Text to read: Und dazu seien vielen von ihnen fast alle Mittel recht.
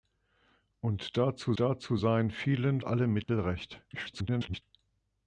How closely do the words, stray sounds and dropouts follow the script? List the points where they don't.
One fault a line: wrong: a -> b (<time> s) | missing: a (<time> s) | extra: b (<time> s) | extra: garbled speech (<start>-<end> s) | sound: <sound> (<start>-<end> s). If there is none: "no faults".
extra: dazu (1.6 s)
missing: von ihnen fast (2.8 s)
sound: dropout (3.2-3.3 s)
extra: garbled speech (3.9-4.6 s)